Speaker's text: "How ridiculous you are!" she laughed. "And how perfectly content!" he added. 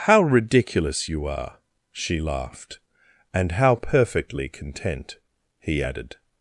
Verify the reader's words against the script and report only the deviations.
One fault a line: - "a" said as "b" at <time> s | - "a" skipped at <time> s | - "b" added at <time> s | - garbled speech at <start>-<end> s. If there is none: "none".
none